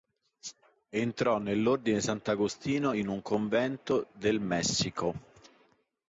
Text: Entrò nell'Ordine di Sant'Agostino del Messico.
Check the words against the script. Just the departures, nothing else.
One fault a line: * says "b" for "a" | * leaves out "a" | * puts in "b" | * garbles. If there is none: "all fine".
* puts in "in un convento"